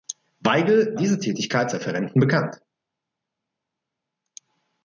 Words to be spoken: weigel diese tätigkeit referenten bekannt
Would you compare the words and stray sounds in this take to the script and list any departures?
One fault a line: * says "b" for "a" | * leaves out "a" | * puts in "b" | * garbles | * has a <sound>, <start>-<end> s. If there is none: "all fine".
all fine